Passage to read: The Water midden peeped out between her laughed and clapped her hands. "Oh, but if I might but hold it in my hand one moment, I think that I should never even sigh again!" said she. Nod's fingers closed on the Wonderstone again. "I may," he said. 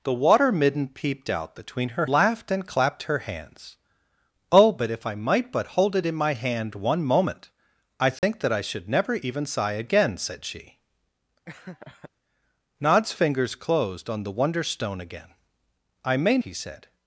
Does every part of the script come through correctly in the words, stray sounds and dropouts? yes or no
no